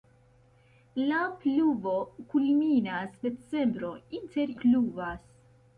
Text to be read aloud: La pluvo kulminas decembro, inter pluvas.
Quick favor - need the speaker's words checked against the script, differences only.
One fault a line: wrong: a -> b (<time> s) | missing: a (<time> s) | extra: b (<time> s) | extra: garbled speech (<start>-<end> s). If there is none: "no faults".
no faults